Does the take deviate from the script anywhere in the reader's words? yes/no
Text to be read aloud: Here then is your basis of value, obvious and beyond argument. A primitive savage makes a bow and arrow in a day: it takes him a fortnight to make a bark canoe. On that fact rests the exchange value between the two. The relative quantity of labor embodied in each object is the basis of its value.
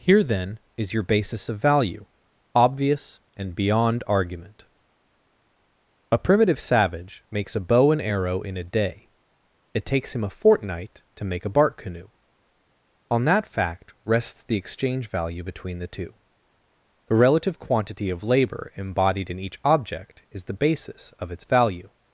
no